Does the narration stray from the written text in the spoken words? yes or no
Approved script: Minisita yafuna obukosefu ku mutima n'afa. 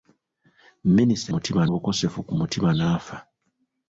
yes